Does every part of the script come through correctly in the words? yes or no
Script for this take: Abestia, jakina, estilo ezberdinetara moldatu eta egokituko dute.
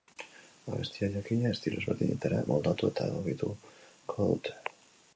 yes